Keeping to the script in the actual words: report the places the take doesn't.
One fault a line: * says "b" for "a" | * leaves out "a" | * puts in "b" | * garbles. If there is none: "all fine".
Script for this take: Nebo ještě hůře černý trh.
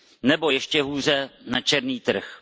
* puts in "na"